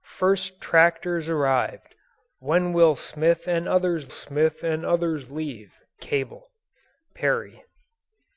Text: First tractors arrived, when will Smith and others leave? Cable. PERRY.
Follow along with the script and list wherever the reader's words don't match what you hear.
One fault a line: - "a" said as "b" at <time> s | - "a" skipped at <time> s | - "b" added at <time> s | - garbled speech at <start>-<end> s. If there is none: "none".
- "Smith and others" added at 4.1 s